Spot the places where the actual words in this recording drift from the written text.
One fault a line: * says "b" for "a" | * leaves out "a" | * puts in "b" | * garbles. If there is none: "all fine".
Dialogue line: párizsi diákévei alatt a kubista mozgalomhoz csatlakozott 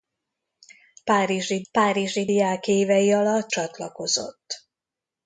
* puts in "párizsi"
* leaves out "a kubista mozgalomhoz"